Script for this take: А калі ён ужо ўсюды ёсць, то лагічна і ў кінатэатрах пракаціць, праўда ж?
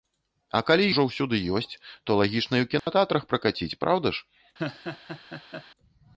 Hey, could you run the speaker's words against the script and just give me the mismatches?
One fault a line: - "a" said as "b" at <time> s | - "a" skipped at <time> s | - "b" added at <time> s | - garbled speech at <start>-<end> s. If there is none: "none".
- "ён" skipped at 0.9 s